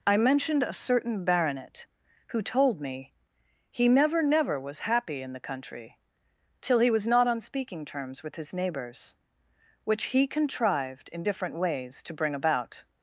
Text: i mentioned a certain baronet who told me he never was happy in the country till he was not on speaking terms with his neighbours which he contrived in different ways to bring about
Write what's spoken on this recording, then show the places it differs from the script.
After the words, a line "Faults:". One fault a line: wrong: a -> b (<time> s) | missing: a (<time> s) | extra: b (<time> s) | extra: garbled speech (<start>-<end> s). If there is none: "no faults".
i mentioned a certain baronet who told me he never never was happy in the country till he was not on speaking terms with his neighbours which he contrived in different ways to bring about
Faults:
extra: never (4.2 s)